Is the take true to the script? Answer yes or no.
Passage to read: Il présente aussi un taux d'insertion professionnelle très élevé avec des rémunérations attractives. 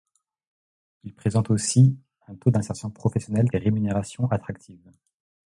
no